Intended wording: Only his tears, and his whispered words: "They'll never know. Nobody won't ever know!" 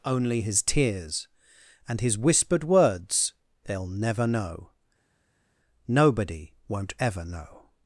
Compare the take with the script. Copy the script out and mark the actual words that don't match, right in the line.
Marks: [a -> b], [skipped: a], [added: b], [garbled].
Only his tears, and his whispered words: "They'll never know. Nobody won't ever know!"